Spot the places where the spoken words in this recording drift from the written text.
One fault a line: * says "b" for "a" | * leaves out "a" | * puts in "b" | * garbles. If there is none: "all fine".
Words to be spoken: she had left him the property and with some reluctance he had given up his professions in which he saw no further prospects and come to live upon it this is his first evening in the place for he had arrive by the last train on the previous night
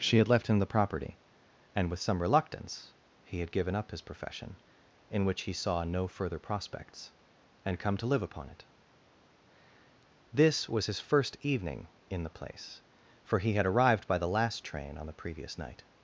* says "profession" for "professions"
* says "was" for "is"
* says "arrived" for "arrive"